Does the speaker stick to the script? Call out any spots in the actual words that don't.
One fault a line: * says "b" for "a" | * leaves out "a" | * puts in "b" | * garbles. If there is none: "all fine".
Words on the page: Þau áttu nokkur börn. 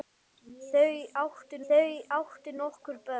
* puts in "þau áttu"